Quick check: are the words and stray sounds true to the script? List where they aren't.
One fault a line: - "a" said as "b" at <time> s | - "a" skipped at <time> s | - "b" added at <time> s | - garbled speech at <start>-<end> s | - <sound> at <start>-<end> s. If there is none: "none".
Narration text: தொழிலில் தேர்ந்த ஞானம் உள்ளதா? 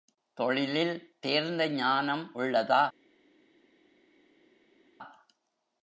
none